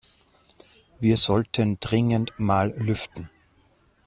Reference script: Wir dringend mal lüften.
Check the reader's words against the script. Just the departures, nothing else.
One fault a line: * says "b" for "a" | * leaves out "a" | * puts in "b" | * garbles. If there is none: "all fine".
* puts in "sollten"